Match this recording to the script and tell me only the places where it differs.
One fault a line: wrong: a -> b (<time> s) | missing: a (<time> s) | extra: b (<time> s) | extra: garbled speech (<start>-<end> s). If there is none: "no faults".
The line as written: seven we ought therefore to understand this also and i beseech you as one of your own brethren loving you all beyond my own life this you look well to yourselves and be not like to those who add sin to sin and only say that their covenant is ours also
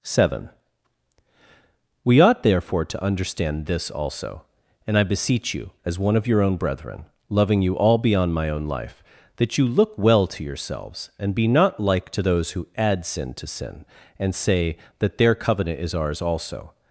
wrong: this -> that (9.4 s)
missing: only (14.3 s)